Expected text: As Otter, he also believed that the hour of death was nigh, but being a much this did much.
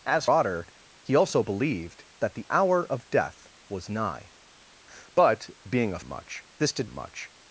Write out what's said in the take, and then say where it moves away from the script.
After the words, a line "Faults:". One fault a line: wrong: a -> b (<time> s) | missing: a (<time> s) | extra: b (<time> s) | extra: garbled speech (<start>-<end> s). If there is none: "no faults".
As Otter, he also believed that the hour of death was nigh, but being a much this did much.
Faults:
no faults